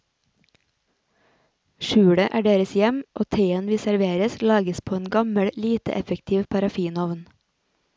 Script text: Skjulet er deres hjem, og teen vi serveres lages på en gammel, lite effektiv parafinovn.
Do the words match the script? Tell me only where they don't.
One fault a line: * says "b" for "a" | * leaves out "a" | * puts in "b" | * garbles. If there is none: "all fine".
all fine